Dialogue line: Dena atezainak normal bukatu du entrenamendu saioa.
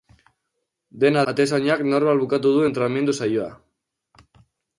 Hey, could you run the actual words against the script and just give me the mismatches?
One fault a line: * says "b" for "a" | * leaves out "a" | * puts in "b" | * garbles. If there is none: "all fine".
all fine